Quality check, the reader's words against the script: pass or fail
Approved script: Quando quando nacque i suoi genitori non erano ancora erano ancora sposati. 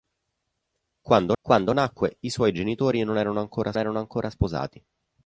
pass